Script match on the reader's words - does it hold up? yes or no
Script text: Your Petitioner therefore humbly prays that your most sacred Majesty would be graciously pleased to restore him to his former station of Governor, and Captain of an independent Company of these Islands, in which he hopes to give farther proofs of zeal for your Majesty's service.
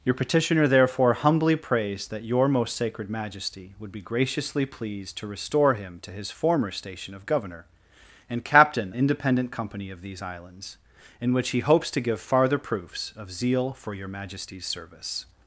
no